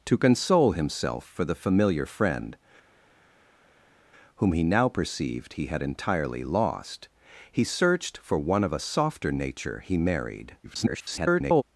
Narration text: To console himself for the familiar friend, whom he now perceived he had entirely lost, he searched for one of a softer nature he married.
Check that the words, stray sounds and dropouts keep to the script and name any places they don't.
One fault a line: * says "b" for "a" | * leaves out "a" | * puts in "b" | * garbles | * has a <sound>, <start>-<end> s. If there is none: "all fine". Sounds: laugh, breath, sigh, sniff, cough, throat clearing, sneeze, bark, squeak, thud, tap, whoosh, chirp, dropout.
* garbles